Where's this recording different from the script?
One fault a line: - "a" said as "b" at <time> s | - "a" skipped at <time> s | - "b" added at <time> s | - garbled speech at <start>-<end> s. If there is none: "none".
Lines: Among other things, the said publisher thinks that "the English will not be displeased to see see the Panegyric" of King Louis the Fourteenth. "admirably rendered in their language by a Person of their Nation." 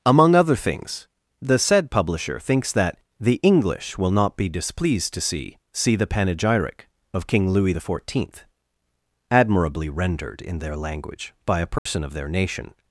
none